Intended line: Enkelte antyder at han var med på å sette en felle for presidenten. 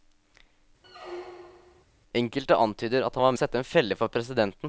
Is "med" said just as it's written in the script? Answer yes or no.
no